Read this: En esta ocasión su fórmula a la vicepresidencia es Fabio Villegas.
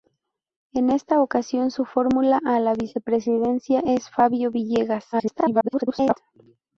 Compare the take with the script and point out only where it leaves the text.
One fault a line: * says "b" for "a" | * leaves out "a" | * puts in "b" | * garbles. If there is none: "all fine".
* garbles